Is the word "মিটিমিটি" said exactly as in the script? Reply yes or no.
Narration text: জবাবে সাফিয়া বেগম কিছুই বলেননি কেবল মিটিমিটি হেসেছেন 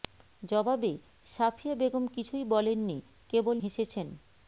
no